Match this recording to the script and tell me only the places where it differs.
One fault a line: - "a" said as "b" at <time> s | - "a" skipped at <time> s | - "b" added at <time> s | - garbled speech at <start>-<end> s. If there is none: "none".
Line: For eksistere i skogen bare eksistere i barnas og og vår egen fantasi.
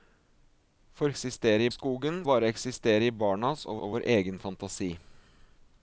none